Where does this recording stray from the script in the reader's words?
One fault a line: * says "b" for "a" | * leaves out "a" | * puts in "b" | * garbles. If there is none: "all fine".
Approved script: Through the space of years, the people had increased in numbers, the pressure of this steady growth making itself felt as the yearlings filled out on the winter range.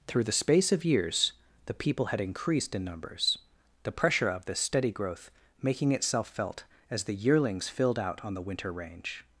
all fine